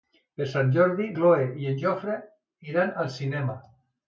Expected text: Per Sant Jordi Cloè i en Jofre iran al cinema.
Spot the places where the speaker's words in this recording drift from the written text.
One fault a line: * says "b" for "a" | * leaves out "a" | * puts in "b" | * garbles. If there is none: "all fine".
all fine